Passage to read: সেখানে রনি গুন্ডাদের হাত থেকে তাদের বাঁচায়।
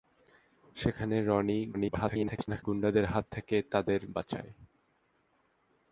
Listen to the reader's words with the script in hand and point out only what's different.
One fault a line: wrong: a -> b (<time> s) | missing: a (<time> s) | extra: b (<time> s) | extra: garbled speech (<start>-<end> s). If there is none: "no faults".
extra: garbled speech (1.7-2.6 s)